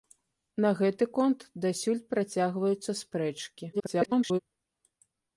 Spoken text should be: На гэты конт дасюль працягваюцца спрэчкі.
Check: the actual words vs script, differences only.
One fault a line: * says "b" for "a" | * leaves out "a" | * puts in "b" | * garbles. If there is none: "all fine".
* garbles